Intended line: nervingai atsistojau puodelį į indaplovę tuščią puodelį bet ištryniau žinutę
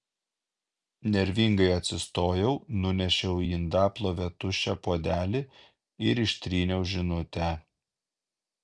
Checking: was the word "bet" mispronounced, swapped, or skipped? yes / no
yes